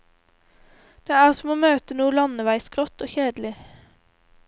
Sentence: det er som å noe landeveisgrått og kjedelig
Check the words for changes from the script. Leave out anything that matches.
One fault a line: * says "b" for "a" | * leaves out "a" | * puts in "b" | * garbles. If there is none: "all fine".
* puts in "møte"